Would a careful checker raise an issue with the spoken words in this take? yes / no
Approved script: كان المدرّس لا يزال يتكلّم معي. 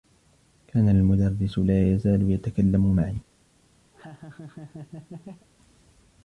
no